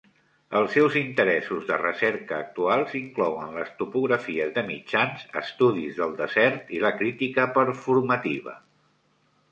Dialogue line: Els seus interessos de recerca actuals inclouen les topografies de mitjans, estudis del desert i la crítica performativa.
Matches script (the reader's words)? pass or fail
pass